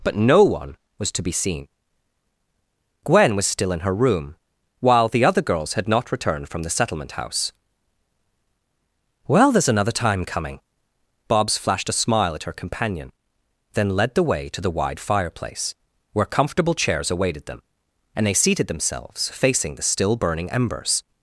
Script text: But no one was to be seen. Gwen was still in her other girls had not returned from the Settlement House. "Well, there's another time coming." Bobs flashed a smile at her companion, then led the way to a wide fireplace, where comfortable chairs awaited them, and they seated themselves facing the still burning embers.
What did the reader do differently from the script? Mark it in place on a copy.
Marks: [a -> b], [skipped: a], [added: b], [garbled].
But no one was to be seen. Gwen was still in her [added: room while the] other girls had not returned from the Settlement House. "Well, there's another time coming." Bobs flashed a smile at her companion, then led the way to [a -> the] wide fireplace, where comfortable chairs awaited them, and they seated themselves facing the still burning embers.